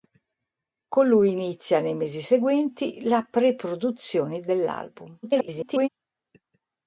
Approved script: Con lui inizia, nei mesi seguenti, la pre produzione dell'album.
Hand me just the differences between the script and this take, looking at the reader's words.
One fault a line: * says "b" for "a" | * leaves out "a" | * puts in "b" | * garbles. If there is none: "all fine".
* garbles